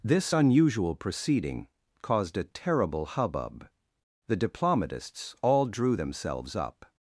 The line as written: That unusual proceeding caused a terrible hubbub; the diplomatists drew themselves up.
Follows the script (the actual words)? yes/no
no